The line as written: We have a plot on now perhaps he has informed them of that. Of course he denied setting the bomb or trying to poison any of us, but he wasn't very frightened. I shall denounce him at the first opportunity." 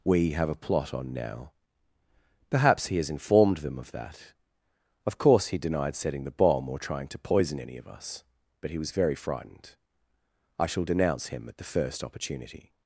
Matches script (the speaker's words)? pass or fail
fail